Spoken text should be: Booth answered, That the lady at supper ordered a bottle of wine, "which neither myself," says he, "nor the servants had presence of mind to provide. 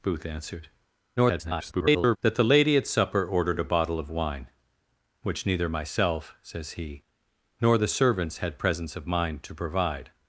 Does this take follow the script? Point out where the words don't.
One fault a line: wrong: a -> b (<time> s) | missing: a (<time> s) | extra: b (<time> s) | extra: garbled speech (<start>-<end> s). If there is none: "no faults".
extra: garbled speech (1.2-2.2 s)